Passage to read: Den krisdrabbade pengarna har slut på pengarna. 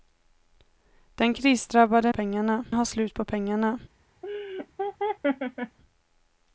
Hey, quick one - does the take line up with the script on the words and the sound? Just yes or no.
no